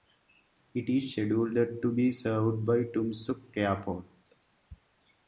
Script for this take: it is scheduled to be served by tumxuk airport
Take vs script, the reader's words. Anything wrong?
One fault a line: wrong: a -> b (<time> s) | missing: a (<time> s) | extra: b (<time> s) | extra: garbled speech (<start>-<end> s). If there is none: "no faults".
no faults